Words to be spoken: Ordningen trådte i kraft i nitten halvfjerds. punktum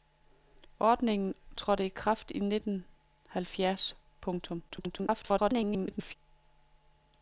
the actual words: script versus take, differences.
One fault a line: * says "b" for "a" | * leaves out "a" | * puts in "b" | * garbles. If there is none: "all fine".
* garbles